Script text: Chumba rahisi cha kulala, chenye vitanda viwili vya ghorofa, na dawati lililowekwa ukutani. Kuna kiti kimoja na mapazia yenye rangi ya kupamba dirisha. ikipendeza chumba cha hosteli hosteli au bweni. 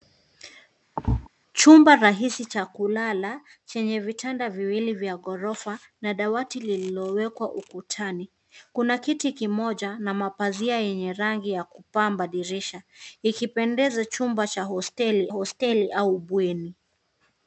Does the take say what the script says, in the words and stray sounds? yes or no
no